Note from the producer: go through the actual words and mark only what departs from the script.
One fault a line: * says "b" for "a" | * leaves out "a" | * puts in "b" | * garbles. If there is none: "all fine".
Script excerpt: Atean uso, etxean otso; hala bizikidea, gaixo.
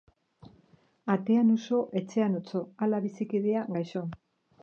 all fine